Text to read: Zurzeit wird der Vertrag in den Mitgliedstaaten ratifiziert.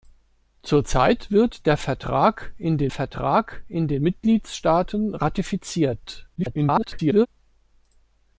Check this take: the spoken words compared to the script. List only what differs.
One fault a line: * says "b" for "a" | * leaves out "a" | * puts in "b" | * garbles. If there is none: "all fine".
* puts in "Vertrag in den"
* garbles